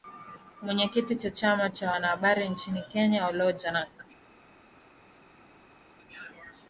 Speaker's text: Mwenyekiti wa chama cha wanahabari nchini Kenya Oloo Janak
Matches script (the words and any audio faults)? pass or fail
pass